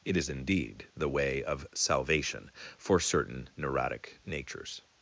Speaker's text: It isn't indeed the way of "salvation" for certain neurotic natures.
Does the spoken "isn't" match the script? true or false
false